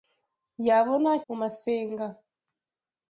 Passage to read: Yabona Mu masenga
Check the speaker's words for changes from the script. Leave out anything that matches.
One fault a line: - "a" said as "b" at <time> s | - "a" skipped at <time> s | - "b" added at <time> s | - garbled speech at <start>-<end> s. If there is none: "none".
none